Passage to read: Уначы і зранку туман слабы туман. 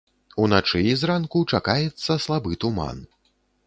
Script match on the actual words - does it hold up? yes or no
no